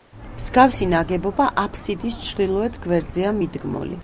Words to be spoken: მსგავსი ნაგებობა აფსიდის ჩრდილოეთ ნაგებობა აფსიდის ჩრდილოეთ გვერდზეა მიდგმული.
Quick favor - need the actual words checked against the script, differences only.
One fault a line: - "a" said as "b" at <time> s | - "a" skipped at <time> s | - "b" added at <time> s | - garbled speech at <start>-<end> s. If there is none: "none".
- "ნაგებობა აფსიდის ჩრდილოეთ" skipped at 2.8 s